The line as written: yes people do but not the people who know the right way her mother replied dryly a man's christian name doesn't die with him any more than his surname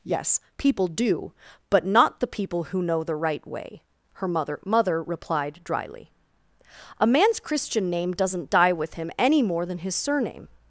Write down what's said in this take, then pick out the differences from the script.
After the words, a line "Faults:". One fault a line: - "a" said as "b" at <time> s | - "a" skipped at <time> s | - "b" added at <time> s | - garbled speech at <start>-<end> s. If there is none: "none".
yes people do but not the people who know the right way her mother mother replied dryly a man's christian name doesn't die with him any more than his surname
Faults:
- "mother" added at 4.7 s